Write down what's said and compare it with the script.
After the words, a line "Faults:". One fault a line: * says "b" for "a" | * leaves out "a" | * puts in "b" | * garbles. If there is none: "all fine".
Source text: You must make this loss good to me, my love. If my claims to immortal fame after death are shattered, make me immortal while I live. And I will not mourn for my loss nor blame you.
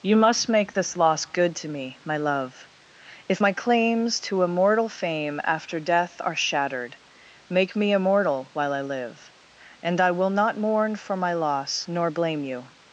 You must make this loss good to me, my love. If my claims to immortal fame after death are shattered, make me immortal while I live. And I will not mourn for my loss nor blame you.
Faults:
all fine